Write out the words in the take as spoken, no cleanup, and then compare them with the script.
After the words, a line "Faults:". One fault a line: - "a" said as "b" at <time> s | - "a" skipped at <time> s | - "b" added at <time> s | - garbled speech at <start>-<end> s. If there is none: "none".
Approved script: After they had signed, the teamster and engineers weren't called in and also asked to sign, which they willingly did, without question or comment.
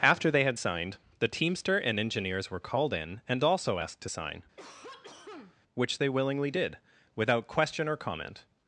After they had signed, the teamster and engineers were called in and also asked to sign, which they willingly did, without question or comment.
Faults:
- "weren't" said as "were" at 2.5 s